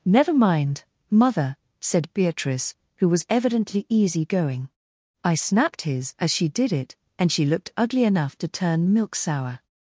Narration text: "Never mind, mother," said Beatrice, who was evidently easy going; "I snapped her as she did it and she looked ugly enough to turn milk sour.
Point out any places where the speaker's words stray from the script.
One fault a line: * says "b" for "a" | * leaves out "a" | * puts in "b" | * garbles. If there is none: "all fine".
* says "his" for "her"